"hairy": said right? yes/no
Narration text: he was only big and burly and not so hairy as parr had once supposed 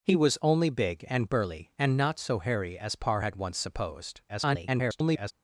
yes